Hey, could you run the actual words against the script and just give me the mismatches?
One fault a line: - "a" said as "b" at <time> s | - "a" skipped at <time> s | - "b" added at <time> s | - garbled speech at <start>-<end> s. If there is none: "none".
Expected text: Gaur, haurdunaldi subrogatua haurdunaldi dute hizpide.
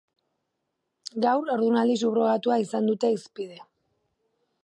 - "haurdunaldi" said as "izan" at 2.6 s